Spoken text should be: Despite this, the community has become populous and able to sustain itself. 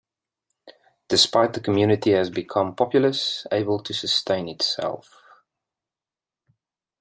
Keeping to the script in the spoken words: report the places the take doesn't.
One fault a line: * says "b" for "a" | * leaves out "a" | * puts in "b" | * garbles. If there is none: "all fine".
* leaves out "this"
* leaves out "and"